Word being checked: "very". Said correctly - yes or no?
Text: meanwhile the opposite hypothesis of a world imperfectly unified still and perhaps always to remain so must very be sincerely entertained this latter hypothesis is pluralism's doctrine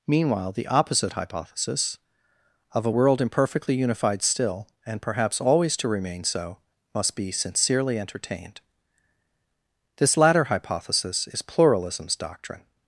no